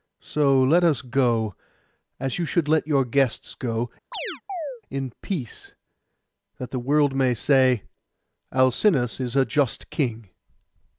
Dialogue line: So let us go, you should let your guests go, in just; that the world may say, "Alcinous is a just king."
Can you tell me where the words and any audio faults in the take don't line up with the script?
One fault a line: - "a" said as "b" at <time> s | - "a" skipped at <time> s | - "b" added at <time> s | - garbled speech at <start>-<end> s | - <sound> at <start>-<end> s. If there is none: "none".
- "as" added at 2.2 s
- chirp at 4.1-4.8 s
- "just" said as "peace" at 5.2 s